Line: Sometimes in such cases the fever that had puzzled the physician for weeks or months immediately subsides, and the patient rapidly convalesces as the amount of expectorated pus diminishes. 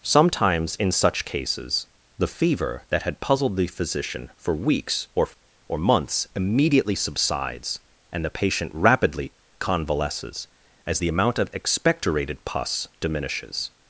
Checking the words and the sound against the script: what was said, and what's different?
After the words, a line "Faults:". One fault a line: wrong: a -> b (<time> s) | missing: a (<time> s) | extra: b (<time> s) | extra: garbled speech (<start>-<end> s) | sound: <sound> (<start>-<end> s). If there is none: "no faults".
Sometimes in such cases the fever that had puzzled the physician for weeks or or months immediately subsides, and the patient rapidly convalesces as the amount of expectorated pus diminishes.
Faults:
extra: or (5.7 s)